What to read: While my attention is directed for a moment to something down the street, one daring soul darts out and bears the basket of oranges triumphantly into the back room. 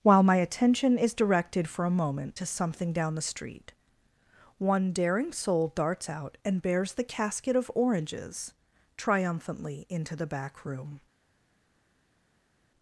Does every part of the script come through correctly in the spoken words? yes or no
no